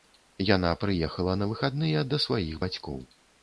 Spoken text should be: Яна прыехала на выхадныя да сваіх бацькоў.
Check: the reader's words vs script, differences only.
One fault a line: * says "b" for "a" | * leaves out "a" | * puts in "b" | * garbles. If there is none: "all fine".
all fine